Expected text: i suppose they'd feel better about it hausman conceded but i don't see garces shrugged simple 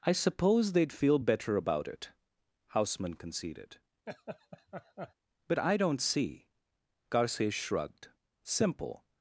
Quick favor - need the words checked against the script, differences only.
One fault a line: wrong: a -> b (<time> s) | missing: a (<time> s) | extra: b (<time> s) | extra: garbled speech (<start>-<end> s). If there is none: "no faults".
no faults